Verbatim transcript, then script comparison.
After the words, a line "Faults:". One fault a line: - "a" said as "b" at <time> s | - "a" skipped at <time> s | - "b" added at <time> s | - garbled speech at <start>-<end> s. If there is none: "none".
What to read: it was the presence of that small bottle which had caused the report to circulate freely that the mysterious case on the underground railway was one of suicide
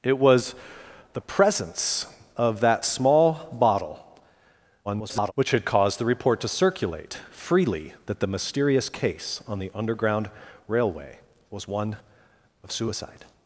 it was the presence of that small bottle [garbled] which had caused the report to circulate freely that the mysterious case on the underground railway was one of suicide
Faults:
- garbled speech at 4.8-5.3 s